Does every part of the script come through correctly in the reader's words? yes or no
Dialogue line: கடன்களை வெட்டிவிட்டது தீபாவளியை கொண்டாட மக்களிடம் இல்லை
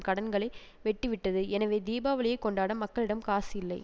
no